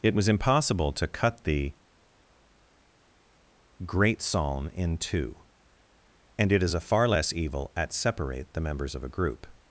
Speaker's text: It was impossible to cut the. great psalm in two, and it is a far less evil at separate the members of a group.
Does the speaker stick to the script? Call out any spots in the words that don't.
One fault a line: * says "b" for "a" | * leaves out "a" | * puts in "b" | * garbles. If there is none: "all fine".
all fine